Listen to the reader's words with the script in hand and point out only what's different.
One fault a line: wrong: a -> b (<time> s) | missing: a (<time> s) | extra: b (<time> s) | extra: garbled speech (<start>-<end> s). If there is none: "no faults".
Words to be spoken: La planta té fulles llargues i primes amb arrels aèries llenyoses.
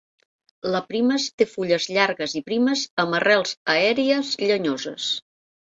wrong: planta -> primes (0.9 s)